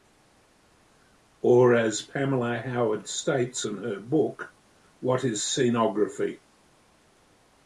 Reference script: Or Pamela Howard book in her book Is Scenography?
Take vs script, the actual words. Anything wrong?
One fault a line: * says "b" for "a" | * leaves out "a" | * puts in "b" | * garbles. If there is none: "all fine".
* puts in "as"
* says "states" for "book"
* puts in "What"